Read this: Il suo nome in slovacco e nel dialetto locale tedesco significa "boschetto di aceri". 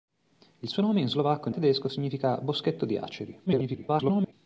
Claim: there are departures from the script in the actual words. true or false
true